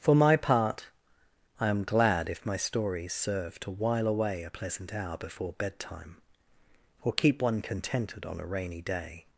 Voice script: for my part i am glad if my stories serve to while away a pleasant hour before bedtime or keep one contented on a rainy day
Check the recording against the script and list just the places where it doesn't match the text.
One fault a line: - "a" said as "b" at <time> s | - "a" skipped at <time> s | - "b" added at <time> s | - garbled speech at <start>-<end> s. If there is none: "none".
none